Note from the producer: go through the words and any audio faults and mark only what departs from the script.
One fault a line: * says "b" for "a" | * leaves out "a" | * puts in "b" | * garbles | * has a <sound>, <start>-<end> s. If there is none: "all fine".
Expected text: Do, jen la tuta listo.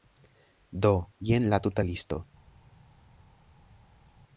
all fine